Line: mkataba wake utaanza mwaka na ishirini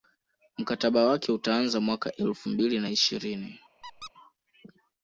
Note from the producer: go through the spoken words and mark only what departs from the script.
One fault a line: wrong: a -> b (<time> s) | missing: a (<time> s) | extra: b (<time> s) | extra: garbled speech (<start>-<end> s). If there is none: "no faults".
extra: elfu mbili (2.1 s)